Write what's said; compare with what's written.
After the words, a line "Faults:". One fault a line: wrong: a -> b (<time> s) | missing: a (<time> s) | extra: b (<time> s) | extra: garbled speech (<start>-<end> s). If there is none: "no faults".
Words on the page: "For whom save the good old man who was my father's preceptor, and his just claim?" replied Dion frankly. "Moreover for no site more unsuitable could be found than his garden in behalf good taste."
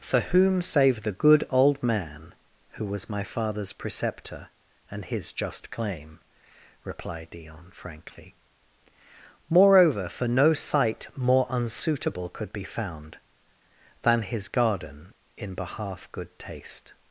"For whom save the good old man who was my father's preceptor, and his just claim?" replied Dion frankly. "Moreover for no site more unsuitable could be found than his garden in behalf good taste."
Faults:
no faults